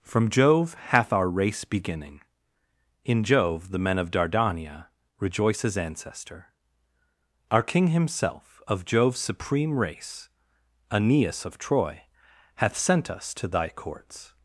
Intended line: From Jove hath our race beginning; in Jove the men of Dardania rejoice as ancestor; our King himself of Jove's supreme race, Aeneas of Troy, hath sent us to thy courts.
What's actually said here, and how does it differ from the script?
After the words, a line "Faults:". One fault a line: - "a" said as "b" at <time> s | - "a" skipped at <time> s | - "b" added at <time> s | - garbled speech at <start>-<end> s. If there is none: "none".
From Jove hath our race beginning; in Jove the men of Dardania rejoice as ancestor; our King himself of Jove's supreme race, Aeneas of Troy, hath sent us to thy courts.
Faults:
none